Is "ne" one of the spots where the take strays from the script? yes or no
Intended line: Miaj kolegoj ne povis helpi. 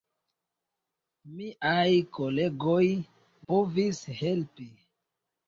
yes